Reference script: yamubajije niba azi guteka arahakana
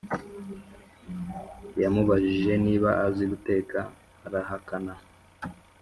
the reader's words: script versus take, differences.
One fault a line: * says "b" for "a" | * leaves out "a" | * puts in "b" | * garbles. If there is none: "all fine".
all fine